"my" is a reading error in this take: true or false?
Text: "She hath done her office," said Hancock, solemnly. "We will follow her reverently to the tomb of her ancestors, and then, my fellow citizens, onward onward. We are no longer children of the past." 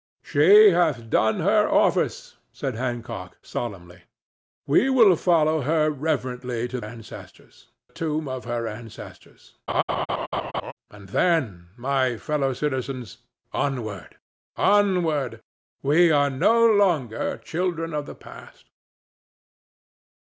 false